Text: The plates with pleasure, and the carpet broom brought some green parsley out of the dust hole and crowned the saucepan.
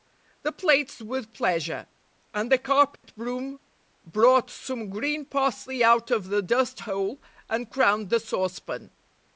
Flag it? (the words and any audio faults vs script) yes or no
yes